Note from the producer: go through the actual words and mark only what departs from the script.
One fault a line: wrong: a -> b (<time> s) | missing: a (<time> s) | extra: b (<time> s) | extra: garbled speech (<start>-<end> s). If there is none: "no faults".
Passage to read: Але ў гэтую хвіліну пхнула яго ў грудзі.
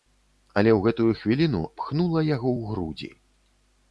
no faults